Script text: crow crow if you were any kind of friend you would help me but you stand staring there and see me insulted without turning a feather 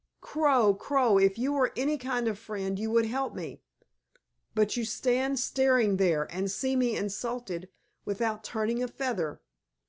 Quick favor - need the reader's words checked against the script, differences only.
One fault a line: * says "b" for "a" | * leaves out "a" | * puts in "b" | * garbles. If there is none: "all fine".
all fine